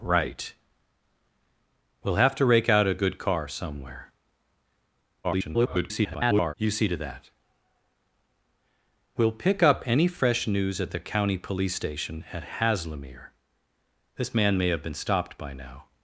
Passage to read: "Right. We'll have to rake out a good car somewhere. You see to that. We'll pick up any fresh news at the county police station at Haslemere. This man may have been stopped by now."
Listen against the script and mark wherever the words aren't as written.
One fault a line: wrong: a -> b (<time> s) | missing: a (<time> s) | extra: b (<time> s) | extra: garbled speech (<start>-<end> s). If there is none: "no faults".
extra: garbled speech (5.2-6.5 s)